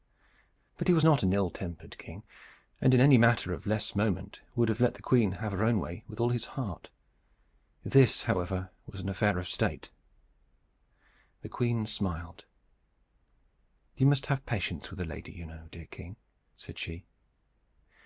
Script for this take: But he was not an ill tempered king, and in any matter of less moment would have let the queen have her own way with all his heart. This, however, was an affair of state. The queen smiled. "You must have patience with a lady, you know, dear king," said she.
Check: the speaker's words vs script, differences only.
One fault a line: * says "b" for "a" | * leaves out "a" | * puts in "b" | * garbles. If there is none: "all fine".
all fine